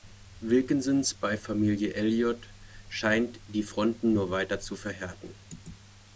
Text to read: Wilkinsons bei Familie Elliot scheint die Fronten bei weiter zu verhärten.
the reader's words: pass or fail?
fail